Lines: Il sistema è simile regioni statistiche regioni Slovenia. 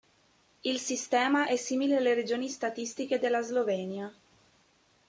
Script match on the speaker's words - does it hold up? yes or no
no